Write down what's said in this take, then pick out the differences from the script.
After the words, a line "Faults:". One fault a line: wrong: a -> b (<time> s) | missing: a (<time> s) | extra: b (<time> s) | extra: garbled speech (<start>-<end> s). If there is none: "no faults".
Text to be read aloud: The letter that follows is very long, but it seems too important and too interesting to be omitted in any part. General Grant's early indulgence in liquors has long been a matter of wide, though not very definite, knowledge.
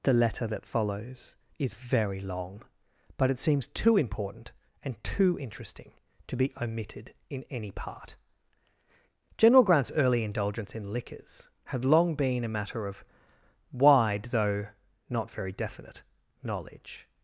The letter that follows is very long, but it seems too important and too interesting to be omitted in any part. General Grant's early indulgence in liquors had long been a matter of wide, though not very definite, knowledge.
Faults:
wrong: has -> had (11.7 s)